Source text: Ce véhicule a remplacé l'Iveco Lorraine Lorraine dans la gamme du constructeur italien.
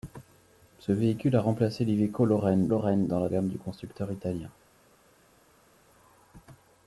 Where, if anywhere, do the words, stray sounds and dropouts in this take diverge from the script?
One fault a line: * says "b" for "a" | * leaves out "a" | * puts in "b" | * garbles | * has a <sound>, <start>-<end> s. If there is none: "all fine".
all fine